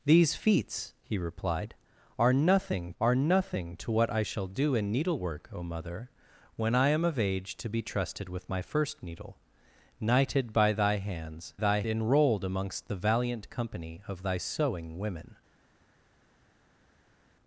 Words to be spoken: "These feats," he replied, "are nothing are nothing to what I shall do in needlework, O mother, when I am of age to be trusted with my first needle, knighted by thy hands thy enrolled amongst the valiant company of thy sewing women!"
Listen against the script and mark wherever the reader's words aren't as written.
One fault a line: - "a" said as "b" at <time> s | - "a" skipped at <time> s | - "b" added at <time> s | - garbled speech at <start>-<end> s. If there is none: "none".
none